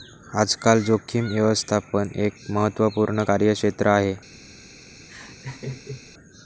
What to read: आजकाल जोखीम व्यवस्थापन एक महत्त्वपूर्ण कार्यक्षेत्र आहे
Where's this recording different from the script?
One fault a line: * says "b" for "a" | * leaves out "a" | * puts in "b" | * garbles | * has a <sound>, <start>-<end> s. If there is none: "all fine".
* has a laugh, 5.1-6.1 s